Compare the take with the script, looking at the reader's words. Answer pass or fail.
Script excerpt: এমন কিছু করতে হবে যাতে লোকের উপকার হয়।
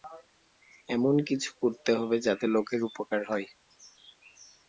pass